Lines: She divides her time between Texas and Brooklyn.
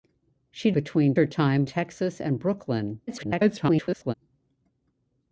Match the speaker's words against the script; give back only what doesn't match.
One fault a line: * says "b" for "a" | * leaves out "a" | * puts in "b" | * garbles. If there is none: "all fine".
* says "between" for "divides"
* leaves out "between"
* garbles